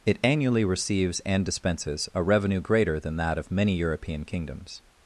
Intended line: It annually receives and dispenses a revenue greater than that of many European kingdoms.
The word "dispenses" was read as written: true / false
true